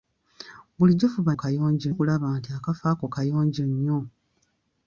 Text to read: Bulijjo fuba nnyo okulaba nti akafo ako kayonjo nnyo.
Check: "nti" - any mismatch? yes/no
no